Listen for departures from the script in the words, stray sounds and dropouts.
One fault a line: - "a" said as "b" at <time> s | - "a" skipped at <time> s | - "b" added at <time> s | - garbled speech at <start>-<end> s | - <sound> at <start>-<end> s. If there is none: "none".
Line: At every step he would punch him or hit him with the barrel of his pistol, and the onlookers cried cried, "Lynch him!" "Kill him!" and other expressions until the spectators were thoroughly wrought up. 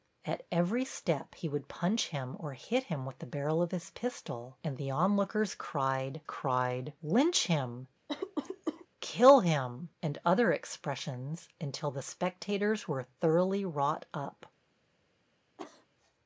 - cough at 8.1-8.9 s
- cough at 15.6-15.9 s